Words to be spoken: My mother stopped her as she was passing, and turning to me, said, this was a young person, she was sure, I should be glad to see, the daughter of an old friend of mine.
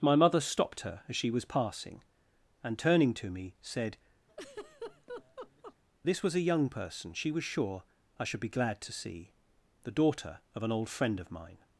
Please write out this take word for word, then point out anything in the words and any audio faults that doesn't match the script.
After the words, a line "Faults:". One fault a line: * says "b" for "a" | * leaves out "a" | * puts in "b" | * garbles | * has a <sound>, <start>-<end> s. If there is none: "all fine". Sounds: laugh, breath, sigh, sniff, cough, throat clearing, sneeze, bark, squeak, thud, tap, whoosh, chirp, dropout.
My mother stopped her as she was passing, and turning to me, said, this was a young person, she was sure, I should be glad to see, the daughter of an old friend of mine.
Faults:
* has a laugh, 4.3-5.8 s